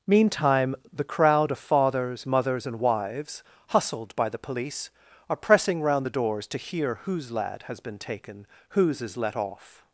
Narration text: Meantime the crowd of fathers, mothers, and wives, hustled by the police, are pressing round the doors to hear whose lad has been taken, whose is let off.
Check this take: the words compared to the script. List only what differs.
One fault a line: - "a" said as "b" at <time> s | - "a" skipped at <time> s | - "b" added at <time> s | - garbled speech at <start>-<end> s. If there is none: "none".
none